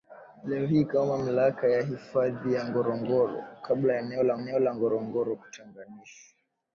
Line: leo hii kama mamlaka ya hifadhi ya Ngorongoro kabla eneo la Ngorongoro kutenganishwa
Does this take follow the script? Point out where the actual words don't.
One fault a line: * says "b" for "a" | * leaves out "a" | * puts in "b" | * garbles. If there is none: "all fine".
* puts in "eneo la"